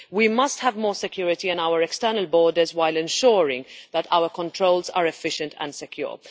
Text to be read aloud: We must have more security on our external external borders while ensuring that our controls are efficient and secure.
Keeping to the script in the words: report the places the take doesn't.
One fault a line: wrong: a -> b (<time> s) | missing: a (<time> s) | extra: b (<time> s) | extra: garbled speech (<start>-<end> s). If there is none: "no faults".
missing: external (2.3 s)